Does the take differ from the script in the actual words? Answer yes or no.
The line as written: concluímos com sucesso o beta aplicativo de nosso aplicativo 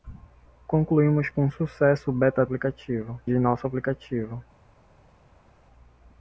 no